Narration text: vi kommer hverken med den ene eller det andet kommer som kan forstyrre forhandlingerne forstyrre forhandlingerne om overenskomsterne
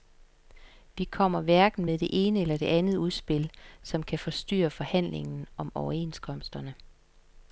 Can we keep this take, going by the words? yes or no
no